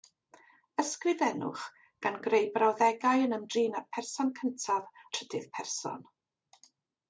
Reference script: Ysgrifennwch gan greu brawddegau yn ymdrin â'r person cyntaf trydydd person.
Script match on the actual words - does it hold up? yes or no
yes